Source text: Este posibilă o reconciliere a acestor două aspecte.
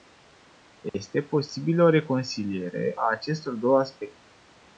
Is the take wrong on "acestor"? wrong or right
right